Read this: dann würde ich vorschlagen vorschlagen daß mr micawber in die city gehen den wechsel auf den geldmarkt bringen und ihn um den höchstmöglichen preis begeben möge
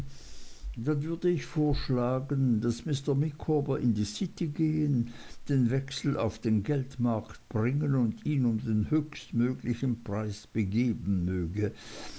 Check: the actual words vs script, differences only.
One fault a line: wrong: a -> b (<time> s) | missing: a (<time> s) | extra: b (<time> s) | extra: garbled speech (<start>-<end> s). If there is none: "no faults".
missing: vorschlagen (2.6 s)